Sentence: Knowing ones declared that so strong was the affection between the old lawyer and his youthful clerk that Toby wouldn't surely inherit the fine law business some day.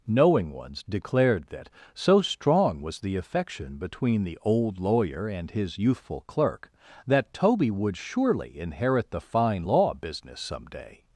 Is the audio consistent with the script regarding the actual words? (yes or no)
no